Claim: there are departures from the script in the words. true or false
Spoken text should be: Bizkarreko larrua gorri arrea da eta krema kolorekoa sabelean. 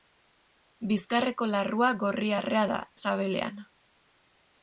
true